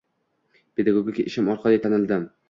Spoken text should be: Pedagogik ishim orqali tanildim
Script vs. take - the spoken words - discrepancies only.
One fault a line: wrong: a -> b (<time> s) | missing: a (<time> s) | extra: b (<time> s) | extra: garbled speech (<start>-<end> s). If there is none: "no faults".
no faults